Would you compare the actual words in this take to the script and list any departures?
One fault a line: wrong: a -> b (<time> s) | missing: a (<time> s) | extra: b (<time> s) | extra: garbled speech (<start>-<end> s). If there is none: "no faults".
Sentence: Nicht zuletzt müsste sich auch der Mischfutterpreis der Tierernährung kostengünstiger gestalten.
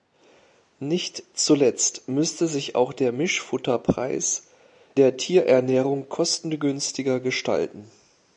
no faults